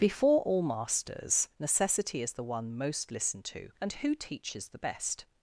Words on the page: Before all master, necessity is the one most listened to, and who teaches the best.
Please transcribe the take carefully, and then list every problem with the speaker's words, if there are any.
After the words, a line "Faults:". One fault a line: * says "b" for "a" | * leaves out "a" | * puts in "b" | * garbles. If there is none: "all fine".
Before all masters, necessity is the one most listened to, and who teaches the best.
Faults:
* says "masters" for "master"